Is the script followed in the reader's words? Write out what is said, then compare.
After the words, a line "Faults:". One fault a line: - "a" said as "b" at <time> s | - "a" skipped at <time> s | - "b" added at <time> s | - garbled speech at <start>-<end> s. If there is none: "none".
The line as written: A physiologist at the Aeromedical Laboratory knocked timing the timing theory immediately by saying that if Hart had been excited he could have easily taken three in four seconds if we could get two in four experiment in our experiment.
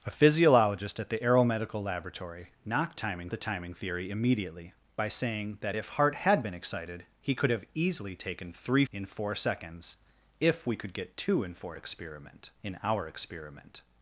A physiologist at the Aeromedical Laboratory knocked timing the timing theory immediately by saying that if Hart had been excited he could have easily taken three in four seconds if we could get two in four experiment in our experiment.
Faults:
none